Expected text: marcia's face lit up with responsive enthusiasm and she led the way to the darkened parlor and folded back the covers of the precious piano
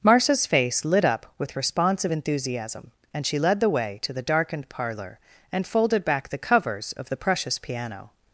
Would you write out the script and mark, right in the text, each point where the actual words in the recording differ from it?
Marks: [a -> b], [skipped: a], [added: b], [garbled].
marcia's face lit up with responsive enthusiasm and she led the way to the darkened parlor and folded back the covers of the precious piano